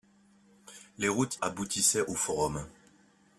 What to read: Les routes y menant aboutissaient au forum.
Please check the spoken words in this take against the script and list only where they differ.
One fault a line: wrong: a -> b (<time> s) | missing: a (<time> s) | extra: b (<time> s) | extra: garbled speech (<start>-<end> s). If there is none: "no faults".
missing: y menant (1.4 s)